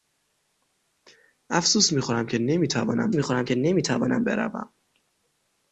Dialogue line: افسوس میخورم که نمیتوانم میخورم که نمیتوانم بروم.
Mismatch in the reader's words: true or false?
false